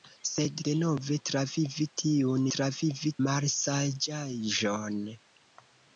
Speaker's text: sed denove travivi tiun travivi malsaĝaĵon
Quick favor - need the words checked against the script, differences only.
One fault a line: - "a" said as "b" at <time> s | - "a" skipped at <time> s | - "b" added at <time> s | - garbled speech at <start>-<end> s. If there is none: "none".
none